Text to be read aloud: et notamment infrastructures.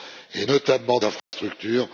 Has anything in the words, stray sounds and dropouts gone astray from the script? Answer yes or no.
yes